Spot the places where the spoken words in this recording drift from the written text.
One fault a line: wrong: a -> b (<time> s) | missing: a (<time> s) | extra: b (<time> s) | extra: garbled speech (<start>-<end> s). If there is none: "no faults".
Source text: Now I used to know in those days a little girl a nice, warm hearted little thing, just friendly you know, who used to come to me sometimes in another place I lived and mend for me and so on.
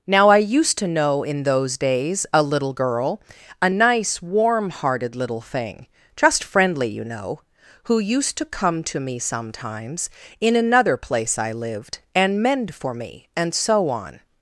no faults